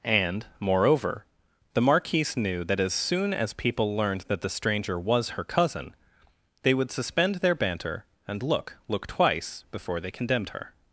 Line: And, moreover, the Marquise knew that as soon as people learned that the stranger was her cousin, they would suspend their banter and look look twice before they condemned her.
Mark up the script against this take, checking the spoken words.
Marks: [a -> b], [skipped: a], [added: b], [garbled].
And, moreover, the Marquise knew that as soon as people learned that the stranger was her cousin, they would suspend their banter and look look twice before they condemned her.